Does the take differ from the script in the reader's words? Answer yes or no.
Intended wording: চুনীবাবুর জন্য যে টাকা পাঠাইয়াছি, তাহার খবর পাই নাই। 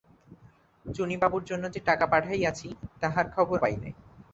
no